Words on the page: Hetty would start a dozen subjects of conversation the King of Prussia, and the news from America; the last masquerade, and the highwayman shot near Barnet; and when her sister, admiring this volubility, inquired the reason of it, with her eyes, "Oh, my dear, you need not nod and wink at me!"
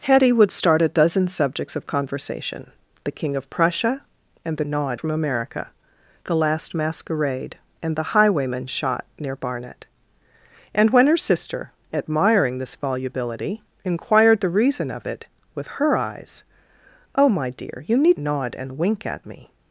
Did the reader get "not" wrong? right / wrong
wrong